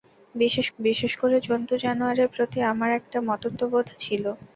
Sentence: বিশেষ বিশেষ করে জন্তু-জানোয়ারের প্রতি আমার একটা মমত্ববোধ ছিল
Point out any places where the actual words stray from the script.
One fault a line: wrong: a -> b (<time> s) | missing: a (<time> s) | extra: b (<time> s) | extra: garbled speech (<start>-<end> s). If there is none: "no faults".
no faults